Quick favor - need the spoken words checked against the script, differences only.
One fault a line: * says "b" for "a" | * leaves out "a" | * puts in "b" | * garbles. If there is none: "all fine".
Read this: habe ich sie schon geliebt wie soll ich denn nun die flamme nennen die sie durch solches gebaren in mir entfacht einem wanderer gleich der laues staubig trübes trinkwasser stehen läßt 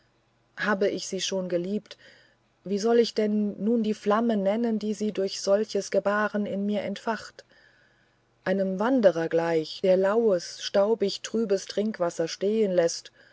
all fine